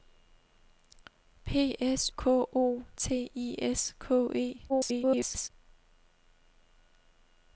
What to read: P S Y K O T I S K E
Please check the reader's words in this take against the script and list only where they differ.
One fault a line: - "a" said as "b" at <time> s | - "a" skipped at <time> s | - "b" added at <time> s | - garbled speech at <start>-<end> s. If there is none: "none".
- "Y" skipped at 2.1 s
- garbled speech at 4.7-5.5 s